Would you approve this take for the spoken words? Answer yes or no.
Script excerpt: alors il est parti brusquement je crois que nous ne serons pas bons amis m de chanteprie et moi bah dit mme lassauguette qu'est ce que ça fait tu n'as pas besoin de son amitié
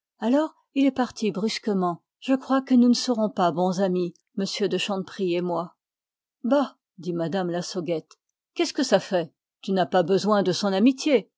yes